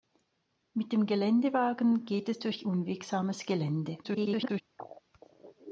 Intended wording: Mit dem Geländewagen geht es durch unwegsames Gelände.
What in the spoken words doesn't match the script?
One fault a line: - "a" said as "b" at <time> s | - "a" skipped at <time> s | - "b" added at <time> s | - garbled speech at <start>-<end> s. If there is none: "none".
- garbled speech at 4.0-4.6 s